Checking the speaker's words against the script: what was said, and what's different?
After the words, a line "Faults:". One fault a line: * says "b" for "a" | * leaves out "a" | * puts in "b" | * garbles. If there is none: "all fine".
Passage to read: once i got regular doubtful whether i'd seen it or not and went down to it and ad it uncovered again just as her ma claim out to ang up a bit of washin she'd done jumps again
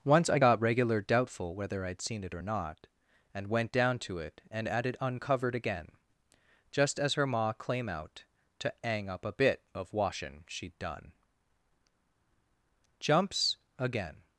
once i got regular doubtful whether i'd seen it or not and went down to it and ad it uncovered again just as her ma claim out to ang up a bit of washin she'd done jumps again
Faults:
all fine